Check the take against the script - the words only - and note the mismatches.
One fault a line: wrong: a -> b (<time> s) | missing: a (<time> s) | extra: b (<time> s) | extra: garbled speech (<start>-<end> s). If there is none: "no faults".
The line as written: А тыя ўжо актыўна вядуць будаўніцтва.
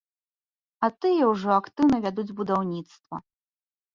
no faults